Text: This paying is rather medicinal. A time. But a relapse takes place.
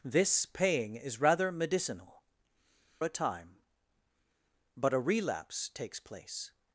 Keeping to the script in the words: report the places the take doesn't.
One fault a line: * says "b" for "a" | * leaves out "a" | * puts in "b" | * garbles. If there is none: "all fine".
all fine